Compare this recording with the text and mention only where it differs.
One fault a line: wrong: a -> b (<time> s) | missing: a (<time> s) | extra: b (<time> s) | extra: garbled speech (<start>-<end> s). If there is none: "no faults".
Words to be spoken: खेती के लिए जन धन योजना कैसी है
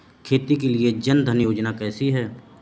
no faults